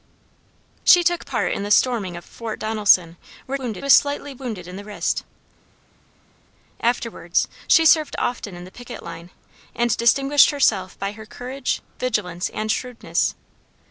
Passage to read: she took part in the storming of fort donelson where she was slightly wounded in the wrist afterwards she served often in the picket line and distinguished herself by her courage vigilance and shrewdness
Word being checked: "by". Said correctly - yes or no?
yes